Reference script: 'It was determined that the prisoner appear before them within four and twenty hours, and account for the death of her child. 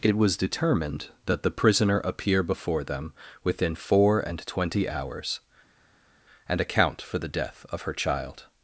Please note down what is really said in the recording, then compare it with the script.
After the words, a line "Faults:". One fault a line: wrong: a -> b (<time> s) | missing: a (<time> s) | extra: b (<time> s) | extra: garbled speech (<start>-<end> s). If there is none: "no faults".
'It was determined that the prisoner appear before them within four and twenty hours, and account for the death of her child.
Faults:
no faults